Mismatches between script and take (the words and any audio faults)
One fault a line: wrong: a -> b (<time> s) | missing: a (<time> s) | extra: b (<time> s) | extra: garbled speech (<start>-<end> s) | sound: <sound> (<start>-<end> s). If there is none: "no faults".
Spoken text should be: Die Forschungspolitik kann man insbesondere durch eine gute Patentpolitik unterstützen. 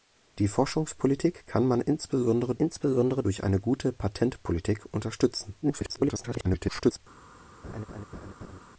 extra: insbesondere (2.5 s)
extra: garbled speech (5.6-7.0 s)
sound: laugh (7.6-8.6 s)